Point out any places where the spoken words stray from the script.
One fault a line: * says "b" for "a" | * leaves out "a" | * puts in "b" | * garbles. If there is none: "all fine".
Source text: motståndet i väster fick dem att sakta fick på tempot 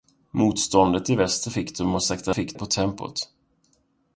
all fine